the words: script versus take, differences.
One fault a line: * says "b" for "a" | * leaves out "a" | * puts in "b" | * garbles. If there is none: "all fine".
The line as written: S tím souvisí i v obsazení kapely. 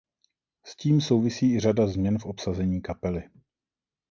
* puts in "řada změn"